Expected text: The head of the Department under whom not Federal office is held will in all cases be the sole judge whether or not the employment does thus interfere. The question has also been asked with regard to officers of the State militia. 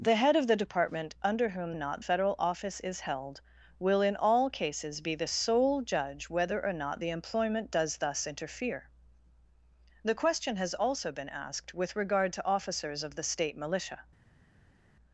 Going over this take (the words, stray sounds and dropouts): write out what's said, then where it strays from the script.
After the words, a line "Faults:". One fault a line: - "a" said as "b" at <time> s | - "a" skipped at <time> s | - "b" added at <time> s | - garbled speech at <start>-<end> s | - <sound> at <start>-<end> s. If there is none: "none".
The head of the Department under whom not Federal office is held will in all cases be the sole judge whether or not the employment does thus interfere. The question has also been asked with regard to officers of the State militia.
Faults:
none